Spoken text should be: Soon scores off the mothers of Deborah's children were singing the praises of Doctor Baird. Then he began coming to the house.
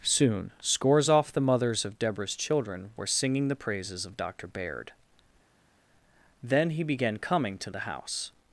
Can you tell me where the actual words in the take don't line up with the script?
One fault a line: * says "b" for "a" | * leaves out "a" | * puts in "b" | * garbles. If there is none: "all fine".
all fine